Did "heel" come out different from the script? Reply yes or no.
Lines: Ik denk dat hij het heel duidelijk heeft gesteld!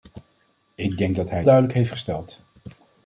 yes